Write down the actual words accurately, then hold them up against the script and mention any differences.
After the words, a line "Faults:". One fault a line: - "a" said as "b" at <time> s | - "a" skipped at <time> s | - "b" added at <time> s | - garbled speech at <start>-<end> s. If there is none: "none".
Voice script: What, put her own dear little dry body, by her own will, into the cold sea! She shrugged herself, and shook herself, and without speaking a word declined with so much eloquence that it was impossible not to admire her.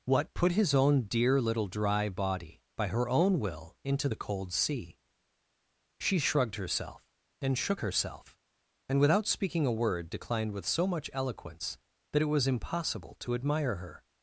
What, put his own dear little dry body, by her own will, into the cold sea! She shrugged herself, and shook herself, and without speaking a word declined with so much eloquence that it was impossible to admire her.
Faults:
- "her" said as "his" at 0.5 s
- "not" skipped at 13.2 s